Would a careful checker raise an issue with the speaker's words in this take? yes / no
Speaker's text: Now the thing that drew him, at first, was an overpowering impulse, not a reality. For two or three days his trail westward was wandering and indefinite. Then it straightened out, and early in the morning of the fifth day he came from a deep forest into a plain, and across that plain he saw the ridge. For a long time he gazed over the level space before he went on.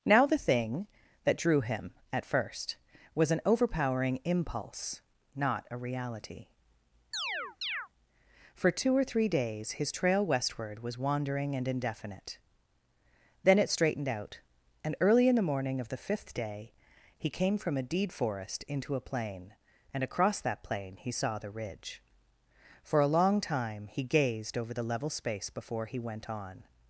yes